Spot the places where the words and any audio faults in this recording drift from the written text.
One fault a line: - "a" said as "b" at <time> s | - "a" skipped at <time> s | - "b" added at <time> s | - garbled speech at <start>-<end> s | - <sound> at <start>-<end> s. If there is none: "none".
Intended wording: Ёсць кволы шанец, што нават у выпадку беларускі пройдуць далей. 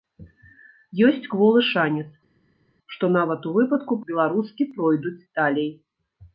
none